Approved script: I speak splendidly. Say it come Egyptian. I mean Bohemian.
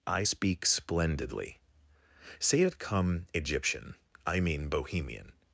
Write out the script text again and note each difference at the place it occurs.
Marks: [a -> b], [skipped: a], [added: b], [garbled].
I speak splendidly. Say it come Egyptian. I mean Bohemian.